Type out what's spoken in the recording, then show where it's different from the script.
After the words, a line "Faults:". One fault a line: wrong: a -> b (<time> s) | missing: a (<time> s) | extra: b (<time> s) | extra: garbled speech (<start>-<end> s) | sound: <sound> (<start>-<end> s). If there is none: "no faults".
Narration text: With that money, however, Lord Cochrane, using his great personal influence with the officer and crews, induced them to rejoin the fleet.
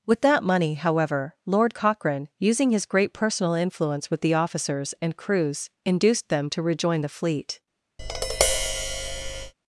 With that money, however, Lord Cochrane, using his great personal influence with the officers and crews, induced them to rejoin the fleet.
Faults:
wrong: officer -> officers (4.3 s)
sound: tap (8.0-9.5 s)